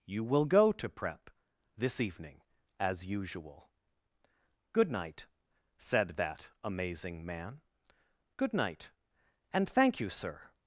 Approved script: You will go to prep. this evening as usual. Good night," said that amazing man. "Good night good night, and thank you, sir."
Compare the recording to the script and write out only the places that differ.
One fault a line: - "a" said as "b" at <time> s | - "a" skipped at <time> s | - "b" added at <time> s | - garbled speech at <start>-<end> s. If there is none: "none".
- "good night" skipped at 8.9 s